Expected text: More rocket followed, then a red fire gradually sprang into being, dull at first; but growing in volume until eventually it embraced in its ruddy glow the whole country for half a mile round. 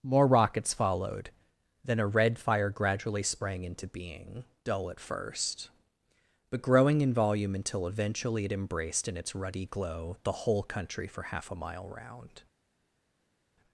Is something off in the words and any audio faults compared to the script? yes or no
yes